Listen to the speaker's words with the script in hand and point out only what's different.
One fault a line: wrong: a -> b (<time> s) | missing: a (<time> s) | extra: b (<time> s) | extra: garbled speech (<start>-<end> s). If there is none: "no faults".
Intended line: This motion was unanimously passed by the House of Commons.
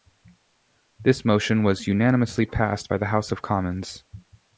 no faults